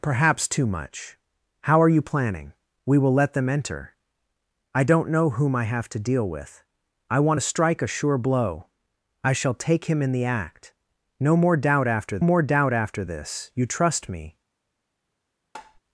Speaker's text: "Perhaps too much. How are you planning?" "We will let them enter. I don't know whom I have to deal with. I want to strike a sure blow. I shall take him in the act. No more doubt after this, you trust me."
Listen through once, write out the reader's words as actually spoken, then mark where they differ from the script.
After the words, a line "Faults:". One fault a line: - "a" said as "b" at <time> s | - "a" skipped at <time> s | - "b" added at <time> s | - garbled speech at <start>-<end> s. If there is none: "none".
"Perhaps too much. How are you planning?" "We will let them enter. I don't know whom I have to deal with. I want to strike a sure blow. I shall take him in the act. No more doubt after more doubt after this, you trust me."
Faults:
- "more doubt after" added at 12.2 s